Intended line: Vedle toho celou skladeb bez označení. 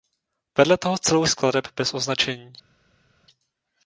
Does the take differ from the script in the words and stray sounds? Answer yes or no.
no